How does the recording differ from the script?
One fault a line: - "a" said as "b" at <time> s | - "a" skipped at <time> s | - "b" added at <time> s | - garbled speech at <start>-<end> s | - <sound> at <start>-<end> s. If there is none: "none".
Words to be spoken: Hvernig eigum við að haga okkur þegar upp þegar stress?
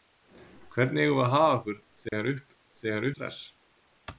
- dropout at 2.1-2.1 s